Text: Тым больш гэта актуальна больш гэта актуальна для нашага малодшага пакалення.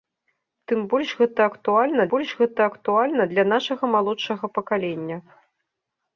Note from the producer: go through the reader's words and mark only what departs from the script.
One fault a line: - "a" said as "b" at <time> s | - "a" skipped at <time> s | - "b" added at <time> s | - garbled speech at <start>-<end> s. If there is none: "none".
none